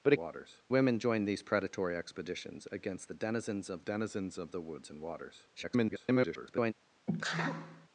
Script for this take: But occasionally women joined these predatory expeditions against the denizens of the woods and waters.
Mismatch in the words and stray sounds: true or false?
true